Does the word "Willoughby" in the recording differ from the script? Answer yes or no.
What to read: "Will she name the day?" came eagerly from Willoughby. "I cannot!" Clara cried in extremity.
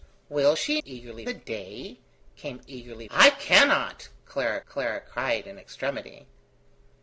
yes